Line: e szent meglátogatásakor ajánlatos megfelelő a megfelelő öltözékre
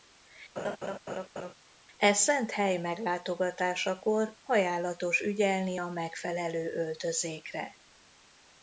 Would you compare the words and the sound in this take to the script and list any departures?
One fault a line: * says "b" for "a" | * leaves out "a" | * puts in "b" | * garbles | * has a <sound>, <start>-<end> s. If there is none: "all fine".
* has a laugh, 0.6-1.5 s
* puts in "hely"
* says "ügyelni" for "megfelelő"